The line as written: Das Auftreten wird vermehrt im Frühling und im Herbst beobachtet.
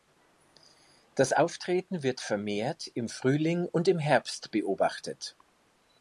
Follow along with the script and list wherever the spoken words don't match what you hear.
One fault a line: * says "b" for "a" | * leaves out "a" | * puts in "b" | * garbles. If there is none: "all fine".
all fine